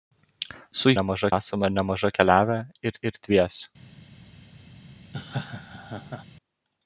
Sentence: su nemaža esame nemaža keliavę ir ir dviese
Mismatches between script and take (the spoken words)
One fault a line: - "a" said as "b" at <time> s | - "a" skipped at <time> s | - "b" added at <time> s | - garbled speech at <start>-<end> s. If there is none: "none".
none